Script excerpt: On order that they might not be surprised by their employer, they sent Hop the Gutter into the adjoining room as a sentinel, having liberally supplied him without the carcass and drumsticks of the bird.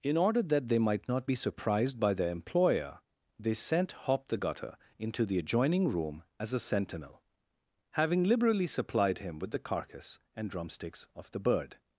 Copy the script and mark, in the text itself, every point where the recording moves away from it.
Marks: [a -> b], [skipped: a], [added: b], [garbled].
[On -> In] order that they might not be surprised by their employer, they sent Hop the Gutter into the adjoining room as a sentinel, having liberally supplied him [without -> with] the carcass and drumsticks of the bird.